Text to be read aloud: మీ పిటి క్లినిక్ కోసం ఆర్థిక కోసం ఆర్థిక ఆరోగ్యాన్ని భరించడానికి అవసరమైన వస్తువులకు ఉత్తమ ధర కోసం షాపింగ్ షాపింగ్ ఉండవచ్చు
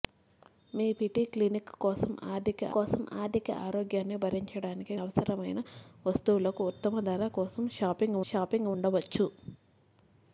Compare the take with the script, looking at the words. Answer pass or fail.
pass